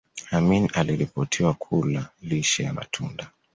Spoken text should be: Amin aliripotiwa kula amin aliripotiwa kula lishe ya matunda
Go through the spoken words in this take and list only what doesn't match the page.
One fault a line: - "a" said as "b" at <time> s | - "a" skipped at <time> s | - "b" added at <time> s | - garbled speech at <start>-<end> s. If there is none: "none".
- "amin aliripotiwa kula" skipped at 2.1 s